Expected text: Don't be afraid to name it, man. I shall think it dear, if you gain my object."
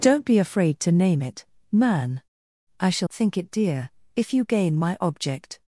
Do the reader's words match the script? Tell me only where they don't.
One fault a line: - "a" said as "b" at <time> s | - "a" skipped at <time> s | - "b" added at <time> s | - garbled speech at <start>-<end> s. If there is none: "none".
none